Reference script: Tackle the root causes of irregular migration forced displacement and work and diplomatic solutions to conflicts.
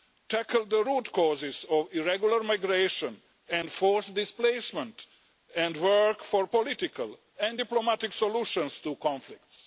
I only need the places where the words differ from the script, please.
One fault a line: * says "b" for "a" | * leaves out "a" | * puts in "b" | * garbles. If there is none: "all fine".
* puts in "and"
* puts in "for political"